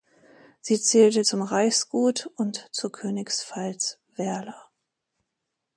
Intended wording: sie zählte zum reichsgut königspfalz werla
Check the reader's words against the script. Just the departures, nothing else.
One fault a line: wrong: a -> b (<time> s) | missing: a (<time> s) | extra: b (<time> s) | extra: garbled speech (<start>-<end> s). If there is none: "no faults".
extra: und zur (2.4 s)